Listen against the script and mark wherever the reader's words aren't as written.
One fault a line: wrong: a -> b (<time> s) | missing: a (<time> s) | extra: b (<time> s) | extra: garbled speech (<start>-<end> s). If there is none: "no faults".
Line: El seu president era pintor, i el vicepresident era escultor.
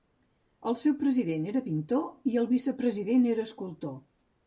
no faults